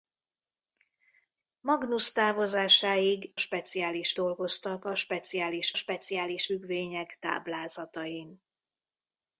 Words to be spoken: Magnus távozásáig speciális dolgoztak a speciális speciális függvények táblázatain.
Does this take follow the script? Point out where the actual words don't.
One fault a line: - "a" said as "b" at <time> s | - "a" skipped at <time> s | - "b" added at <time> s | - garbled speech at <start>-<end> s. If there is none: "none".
none